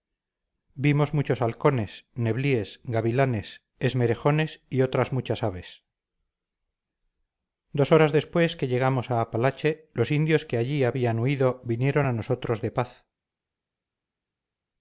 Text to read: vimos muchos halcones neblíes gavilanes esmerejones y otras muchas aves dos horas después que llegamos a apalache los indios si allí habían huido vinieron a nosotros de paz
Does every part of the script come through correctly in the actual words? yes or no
no